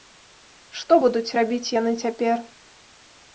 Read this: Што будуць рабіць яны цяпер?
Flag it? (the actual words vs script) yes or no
no